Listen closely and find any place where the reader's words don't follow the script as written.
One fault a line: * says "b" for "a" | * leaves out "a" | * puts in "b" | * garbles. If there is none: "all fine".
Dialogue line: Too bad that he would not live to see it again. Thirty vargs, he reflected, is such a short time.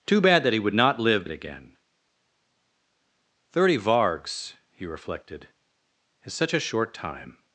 * leaves out "to see"